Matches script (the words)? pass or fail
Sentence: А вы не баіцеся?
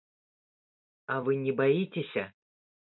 pass